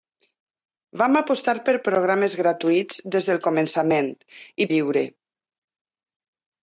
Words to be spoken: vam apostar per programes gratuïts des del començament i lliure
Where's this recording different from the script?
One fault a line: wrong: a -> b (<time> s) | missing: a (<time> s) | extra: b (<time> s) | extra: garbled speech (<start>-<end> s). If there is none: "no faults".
no faults